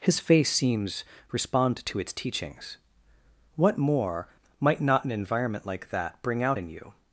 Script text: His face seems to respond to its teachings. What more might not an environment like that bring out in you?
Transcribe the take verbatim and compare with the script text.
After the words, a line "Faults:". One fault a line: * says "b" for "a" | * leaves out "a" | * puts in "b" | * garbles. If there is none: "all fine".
His face seems respond to its teachings. What more might not an environment like that bring out in you?
Faults:
* leaves out "to"